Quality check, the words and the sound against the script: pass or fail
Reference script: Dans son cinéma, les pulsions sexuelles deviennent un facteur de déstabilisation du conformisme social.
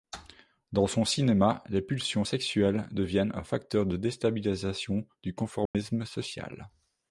fail